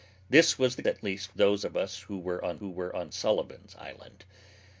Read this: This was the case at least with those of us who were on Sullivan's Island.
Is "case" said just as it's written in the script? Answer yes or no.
no